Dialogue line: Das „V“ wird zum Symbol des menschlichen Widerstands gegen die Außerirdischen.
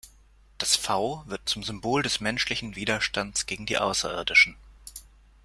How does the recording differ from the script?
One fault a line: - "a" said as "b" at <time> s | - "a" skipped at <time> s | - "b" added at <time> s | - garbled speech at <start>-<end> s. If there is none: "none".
none